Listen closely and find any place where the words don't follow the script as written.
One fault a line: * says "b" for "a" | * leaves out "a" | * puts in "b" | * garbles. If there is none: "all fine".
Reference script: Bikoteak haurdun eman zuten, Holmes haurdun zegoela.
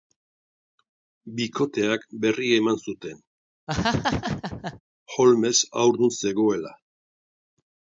* says "berria" for "haurdun"